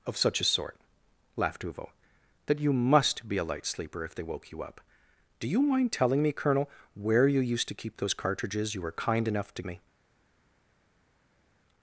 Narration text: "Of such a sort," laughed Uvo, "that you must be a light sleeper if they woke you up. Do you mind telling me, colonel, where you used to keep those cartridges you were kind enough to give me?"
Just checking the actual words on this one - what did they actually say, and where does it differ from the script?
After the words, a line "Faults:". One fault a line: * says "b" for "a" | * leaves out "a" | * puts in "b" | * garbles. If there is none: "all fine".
"Of such a sort," laughed Uvo, "that you must be a light sleeper if they woke you up. Do you mind telling me, colonel, where you used to keep those cartridges you were kind enough to me?"
Faults:
* leaves out "give"